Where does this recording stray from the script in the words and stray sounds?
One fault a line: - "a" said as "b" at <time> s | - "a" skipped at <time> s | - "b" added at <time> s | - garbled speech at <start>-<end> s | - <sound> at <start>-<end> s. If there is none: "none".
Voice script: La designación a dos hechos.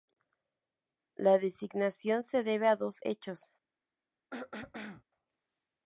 - "se debe" added at 2.2 s
- throat clearing at 4.3-5.0 s